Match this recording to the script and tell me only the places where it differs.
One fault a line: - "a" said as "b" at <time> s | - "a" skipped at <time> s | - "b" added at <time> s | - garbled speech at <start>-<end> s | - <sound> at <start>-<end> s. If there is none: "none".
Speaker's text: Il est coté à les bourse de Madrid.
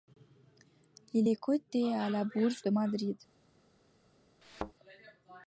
- "les" said as "la" at 2.1 s
- thud at 4.4-4.7 s